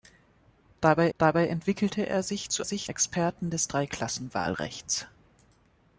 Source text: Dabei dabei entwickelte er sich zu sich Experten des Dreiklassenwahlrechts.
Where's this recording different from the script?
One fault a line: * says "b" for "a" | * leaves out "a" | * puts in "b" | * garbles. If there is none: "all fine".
all fine